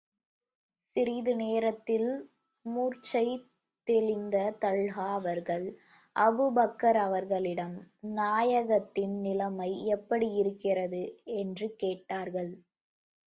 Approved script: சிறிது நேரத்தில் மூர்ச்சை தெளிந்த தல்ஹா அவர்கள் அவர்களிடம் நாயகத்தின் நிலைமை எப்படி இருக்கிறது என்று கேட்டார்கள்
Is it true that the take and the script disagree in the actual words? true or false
true